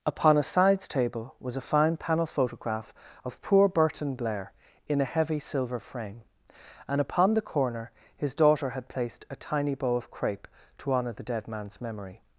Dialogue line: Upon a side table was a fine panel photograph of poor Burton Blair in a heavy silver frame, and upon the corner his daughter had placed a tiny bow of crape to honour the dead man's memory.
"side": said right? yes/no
no